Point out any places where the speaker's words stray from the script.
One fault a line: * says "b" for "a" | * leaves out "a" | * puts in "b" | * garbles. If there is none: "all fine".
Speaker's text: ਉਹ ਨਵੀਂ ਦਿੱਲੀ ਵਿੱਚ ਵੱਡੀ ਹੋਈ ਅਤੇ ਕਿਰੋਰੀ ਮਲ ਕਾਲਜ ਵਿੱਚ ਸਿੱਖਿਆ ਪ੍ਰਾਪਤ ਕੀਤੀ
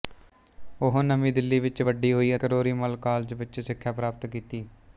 * leaves out "ਅਤੇ"